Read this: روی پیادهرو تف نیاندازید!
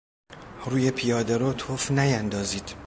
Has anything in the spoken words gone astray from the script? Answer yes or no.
no